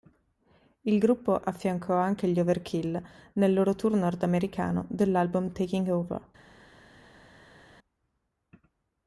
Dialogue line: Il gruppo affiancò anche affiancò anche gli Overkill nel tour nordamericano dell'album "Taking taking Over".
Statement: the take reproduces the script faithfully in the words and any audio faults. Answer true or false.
false